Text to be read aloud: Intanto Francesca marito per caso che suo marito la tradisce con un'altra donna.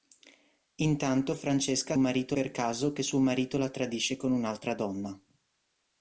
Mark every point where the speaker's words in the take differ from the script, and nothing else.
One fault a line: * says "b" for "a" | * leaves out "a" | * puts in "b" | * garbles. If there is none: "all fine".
all fine